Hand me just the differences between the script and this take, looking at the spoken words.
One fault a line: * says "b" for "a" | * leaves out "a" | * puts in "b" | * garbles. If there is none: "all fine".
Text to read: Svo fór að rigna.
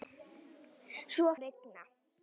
* leaves out "fór"